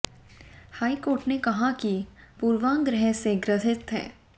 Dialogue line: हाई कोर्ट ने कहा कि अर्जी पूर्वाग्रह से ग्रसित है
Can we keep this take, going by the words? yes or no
no